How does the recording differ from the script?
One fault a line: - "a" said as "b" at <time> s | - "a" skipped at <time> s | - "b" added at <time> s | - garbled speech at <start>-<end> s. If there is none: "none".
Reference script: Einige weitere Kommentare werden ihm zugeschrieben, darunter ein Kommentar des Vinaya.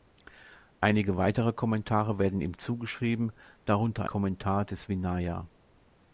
- "ein" skipped at 4.0 s